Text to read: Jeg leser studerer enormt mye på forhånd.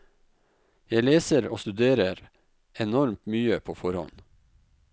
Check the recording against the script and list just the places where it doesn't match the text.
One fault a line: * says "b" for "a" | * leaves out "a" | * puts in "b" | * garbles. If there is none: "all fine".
* puts in "og"